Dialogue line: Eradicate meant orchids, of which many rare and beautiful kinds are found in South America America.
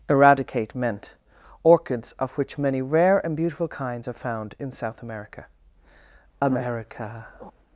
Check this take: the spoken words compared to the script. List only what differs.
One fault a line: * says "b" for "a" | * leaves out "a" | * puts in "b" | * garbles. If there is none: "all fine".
all fine